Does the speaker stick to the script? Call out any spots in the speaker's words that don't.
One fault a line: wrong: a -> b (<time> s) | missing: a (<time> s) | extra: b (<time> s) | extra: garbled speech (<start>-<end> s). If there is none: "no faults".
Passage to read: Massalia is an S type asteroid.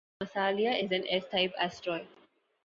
no faults